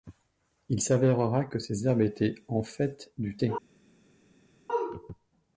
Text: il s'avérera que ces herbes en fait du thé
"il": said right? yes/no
yes